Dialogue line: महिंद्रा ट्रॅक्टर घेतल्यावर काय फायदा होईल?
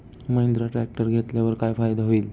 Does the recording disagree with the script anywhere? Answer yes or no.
no